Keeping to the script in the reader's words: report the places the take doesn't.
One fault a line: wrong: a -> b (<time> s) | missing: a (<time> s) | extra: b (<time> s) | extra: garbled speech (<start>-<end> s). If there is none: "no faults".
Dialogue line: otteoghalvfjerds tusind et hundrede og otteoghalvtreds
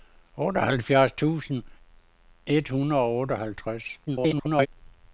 extra: garbled speech (4.1-4.7 s)